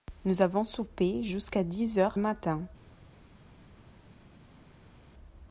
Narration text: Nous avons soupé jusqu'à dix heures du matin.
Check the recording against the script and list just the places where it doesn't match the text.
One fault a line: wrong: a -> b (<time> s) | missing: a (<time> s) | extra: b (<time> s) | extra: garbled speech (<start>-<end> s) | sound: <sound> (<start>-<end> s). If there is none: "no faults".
missing: du (2.2 s)